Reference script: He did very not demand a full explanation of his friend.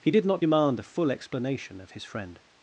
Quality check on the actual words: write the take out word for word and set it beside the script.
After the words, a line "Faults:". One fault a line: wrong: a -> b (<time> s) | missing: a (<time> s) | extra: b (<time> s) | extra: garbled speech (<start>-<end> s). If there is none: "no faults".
He did not demand a full explanation of his friend.
Faults:
missing: very (0.3 s)